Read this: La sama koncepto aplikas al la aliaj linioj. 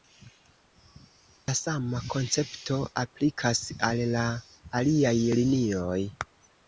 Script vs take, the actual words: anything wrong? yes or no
no